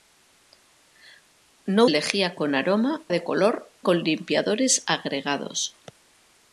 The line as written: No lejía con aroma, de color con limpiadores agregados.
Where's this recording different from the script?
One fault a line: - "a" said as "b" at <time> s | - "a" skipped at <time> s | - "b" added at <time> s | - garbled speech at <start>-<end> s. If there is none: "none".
none